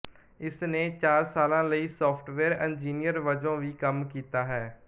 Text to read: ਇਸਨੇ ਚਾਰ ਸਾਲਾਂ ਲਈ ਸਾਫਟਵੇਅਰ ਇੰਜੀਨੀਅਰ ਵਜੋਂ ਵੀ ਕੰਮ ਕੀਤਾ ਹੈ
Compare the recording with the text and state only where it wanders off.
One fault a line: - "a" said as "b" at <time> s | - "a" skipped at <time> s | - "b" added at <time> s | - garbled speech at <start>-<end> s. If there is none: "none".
none